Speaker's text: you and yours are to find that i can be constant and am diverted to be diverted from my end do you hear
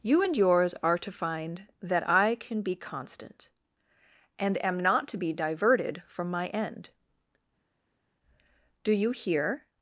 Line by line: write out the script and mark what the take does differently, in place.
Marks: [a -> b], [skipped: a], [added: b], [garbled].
you and yours are to find that i can be constant and am [diverted -> not] to be diverted from my end do you hear